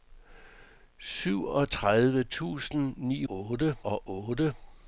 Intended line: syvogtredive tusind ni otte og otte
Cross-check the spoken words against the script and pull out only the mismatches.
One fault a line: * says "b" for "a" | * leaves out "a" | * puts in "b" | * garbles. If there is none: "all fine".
all fine